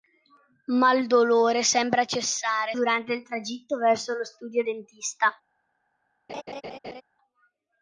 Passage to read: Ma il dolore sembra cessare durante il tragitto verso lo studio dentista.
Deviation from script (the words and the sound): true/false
true